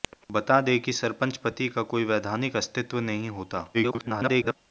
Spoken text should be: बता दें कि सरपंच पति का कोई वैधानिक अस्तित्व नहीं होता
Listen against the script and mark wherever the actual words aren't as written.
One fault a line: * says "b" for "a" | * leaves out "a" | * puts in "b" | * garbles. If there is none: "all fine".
* garbles